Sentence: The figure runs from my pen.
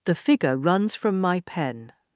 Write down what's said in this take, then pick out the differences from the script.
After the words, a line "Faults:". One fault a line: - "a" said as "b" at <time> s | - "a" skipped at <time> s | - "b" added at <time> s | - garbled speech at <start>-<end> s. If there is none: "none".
The figure runs from my pen.
Faults:
none